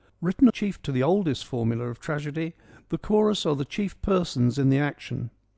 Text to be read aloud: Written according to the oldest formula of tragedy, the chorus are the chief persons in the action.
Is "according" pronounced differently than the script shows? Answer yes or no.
yes